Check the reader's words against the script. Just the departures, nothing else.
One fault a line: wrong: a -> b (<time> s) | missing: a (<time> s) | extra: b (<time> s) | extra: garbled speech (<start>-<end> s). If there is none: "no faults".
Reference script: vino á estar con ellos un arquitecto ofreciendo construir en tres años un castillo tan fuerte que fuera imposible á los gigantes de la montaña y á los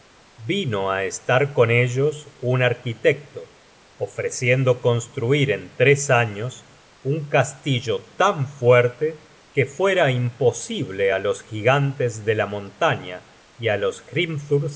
no faults